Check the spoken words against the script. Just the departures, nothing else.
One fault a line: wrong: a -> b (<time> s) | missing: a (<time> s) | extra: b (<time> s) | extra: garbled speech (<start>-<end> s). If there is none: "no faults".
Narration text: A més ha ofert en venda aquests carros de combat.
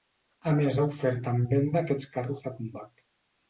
no faults